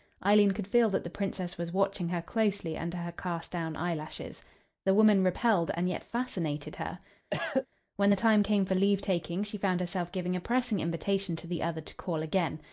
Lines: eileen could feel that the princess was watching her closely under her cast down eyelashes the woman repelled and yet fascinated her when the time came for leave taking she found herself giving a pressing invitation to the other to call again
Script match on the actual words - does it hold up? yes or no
yes